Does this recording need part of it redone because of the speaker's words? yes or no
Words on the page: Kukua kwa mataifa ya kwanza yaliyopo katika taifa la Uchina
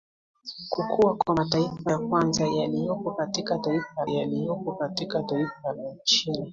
yes